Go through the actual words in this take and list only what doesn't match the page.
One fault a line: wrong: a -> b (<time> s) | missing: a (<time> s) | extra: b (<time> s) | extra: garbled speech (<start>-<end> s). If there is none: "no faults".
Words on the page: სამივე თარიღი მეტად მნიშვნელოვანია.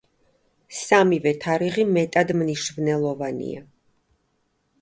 no faults